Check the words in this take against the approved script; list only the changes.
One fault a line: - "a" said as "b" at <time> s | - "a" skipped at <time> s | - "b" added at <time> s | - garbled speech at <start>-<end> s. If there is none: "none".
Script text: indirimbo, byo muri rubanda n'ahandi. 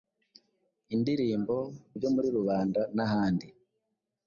none